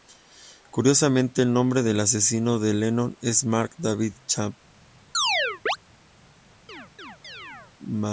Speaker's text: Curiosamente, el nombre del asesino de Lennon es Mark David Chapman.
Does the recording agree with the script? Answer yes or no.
yes